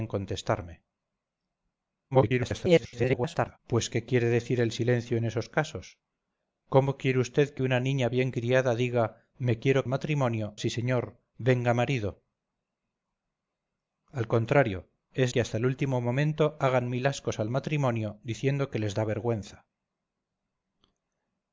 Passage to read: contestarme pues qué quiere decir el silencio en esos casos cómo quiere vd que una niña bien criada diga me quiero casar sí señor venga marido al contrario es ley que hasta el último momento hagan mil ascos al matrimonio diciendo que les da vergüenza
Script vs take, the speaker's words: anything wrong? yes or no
yes